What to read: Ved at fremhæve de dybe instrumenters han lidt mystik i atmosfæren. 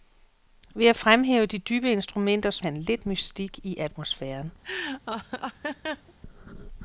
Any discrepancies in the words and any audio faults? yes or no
yes